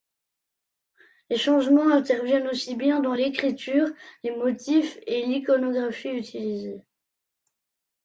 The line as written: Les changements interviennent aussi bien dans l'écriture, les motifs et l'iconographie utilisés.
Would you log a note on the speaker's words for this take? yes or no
no